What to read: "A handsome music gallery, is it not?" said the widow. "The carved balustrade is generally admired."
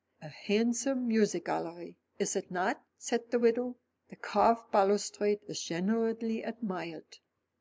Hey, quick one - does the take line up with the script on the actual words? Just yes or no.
yes